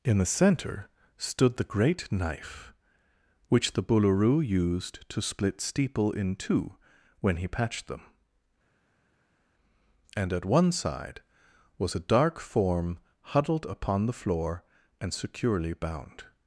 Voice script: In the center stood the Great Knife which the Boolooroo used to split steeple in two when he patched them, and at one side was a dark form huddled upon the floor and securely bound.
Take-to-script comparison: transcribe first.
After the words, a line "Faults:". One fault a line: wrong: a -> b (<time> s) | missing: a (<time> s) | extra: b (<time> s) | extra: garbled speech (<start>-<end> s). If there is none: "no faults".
In the center stood the Great Knife which the Boolooroo used to split steeple in two when he patched them, and at one side was a dark form huddled upon the floor and securely bound.
Faults:
no faults